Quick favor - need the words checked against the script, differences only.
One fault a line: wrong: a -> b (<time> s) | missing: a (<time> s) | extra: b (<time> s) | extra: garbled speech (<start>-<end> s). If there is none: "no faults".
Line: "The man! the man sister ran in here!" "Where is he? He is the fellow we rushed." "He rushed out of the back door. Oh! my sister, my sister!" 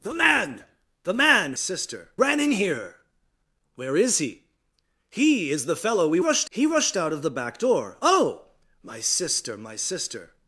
no faults